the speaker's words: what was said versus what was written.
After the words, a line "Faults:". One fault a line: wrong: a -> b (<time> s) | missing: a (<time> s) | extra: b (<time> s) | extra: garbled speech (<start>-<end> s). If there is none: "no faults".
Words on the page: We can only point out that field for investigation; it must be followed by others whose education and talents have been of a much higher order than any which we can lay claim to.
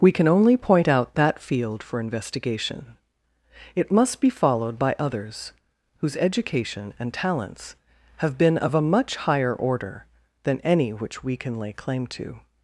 We can only point out that field for investigation; it must be followed by others whose education and talents have been of a much higher order than any which we can lay claim to.
Faults:
no faults